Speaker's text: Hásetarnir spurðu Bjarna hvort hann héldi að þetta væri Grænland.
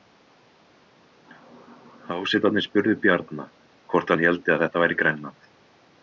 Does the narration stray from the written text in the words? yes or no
no